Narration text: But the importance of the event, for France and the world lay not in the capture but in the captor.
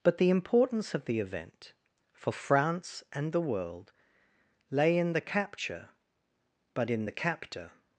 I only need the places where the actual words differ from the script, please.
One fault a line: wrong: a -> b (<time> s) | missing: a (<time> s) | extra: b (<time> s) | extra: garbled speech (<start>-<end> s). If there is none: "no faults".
missing: not (5.0 s)